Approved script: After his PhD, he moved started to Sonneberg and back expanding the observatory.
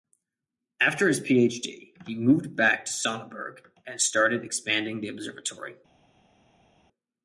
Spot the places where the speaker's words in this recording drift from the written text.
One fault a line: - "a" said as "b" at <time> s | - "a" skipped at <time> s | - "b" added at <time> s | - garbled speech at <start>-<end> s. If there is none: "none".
- "started" said as "back" at 2.5 s
- "back" said as "started" at 4.0 s